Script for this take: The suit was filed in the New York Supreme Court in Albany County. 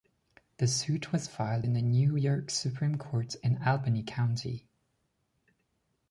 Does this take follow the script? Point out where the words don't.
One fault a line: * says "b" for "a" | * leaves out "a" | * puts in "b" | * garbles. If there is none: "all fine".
all fine